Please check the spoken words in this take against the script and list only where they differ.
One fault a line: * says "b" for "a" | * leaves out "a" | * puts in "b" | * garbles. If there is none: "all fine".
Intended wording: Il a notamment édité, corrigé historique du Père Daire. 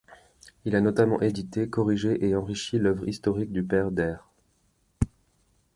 * puts in "et enrichi l'œuvre"